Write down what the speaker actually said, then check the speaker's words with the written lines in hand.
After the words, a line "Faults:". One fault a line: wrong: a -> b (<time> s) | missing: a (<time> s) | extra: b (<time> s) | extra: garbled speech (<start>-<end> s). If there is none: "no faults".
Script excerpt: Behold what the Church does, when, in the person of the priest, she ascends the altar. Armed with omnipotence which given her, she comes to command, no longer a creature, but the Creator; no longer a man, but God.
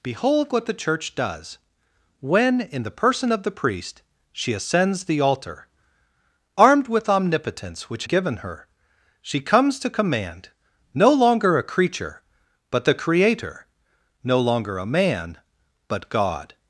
Behold what the Church does, when, in the person of the priest, she ascends the altar. Armed with omnipotence which given her, she comes to command, no longer a creature, but the Creator; no longer a man, but God.
Faults:
no faults